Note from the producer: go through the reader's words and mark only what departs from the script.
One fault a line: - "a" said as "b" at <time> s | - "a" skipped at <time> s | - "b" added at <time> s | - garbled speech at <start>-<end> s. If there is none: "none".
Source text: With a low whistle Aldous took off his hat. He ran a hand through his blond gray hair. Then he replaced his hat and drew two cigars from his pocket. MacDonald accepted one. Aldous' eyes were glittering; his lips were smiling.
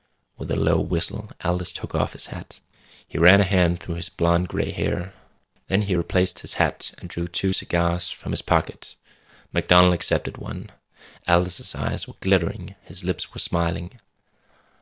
none